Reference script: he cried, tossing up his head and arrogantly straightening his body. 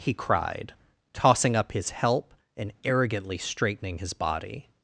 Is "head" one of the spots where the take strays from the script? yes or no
yes